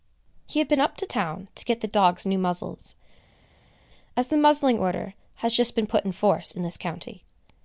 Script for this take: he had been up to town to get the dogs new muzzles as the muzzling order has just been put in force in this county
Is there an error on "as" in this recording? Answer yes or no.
no